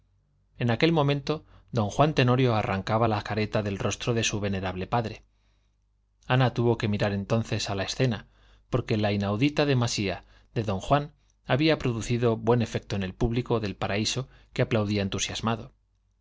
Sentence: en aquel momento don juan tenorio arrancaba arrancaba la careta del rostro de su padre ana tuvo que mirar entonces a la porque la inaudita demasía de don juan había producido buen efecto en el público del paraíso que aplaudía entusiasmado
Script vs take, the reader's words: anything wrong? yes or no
yes